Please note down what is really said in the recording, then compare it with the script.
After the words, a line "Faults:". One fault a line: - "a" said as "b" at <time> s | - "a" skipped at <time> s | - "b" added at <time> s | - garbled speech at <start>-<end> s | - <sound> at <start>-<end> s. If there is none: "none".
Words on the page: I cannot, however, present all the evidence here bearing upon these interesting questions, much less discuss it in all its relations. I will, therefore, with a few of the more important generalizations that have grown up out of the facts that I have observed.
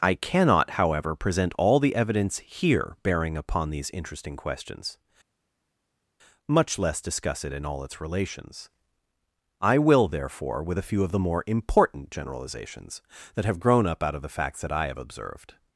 I cannot, however, present all the evidence here bearing upon these interesting questions, much less discuss it in all its relations. I will, therefore, with a few of the more important generalizations that have grown up out of the facts that I have observed.
Faults:
none